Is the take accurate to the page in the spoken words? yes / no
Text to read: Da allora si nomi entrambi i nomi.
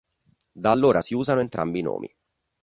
no